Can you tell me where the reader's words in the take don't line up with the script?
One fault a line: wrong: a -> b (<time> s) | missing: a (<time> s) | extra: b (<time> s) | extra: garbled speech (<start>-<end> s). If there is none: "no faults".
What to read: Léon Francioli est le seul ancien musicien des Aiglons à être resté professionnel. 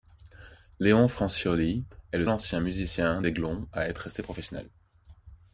missing: seul (2.2 s)
missing: des (3.2 s)